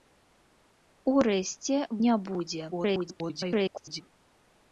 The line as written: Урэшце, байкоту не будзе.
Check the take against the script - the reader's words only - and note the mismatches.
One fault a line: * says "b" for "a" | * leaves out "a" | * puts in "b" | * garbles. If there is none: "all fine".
* leaves out "байкоту"
* garbles